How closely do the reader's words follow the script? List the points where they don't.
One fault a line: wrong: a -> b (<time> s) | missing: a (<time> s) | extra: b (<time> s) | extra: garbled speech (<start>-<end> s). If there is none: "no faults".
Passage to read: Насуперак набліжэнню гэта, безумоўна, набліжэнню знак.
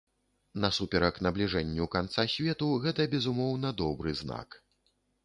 extra: канца свету (1.9 s)
wrong: набліжэнню -> добры (3.8 s)